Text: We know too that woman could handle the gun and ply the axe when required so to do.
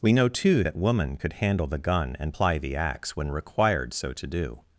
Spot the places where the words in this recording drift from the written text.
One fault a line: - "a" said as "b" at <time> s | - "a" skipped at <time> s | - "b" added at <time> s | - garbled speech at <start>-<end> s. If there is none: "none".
none